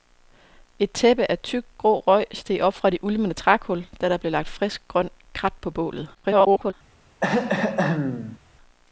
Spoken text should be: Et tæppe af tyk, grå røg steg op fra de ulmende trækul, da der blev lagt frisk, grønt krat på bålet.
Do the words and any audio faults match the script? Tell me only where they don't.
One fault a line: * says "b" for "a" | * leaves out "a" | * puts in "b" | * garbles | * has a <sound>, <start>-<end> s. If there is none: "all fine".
* garbles
* has a throat clearing, 7.2-8.4 s